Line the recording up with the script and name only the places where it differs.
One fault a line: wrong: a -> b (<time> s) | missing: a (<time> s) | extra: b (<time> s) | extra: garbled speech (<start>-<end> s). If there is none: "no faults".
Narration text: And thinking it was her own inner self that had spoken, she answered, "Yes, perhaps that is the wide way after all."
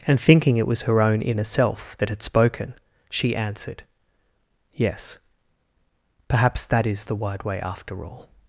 no faults